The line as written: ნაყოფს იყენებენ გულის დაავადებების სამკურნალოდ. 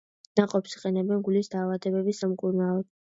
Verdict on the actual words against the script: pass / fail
pass